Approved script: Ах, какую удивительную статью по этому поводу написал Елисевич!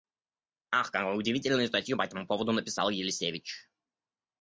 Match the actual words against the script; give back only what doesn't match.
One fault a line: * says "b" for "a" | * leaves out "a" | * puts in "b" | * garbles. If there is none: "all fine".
all fine